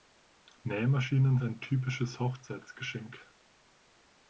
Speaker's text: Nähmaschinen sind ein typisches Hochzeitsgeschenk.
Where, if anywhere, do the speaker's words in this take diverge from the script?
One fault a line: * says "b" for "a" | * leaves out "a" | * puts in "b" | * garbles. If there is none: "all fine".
* leaves out "sind"